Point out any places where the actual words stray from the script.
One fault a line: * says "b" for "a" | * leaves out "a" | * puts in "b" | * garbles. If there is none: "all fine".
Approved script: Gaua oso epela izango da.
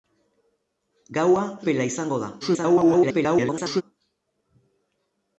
* leaves out "oso"
* garbles